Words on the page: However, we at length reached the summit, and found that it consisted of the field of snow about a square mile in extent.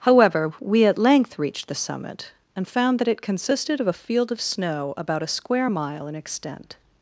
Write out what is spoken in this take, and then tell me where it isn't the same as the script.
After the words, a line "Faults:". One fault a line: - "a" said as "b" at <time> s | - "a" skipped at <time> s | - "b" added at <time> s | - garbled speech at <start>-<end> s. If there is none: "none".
However, we at length reached the summit, and found that it consisted of a field of snow about a square mile in extent.
Faults:
- "the" said as "a" at 3.9 s